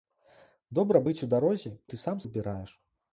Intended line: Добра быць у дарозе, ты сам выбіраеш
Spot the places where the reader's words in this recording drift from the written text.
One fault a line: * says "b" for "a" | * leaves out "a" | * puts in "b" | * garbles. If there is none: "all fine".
all fine